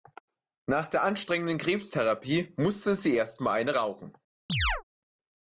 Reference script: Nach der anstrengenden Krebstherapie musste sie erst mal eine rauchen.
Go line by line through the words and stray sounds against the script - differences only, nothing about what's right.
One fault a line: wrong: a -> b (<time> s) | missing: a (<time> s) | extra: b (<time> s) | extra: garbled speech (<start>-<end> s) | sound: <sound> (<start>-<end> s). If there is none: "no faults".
sound: chirp (4.5-4.8 s)